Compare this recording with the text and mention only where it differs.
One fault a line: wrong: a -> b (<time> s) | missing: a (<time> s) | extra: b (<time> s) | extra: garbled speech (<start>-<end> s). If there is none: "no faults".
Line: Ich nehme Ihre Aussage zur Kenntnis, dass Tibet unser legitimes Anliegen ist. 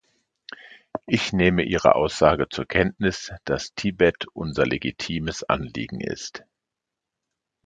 no faults